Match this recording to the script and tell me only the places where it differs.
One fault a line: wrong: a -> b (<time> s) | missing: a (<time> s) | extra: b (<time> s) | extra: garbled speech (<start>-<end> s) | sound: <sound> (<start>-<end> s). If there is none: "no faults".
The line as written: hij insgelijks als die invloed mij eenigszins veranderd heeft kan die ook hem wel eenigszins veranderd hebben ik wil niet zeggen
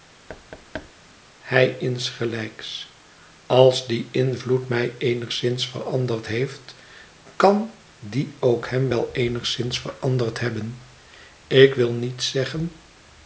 sound: thud (0.3-0.9 s)